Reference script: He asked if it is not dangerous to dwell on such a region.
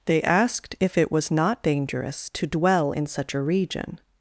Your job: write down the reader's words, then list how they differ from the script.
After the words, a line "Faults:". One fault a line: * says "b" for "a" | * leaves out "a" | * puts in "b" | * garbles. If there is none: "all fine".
They asked if it was not dangerous to dwell in such a region.
Faults:
* says "They" for "He"
* says "was" for "is"
* says "in" for "on"